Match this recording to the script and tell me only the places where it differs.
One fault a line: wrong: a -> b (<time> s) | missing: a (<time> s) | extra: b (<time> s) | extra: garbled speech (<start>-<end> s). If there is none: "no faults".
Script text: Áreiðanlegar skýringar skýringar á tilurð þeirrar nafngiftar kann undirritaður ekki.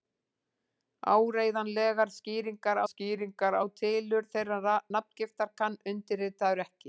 no faults